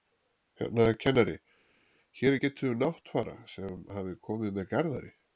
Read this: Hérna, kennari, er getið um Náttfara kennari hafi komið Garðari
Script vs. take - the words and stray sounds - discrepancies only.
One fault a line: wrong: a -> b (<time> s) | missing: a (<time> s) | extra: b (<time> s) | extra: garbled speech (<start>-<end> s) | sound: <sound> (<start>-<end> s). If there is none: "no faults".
extra: hér (2.2 s)
wrong: kennari -> sem (3.5 s)
extra: með (4.6 s)